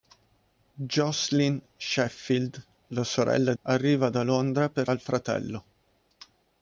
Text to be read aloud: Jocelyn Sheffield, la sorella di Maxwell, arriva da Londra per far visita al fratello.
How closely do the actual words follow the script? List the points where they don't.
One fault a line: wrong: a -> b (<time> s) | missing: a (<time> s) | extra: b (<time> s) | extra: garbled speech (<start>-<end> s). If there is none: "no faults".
missing: di Maxwell (3.5 s)
missing: far visita (4.9 s)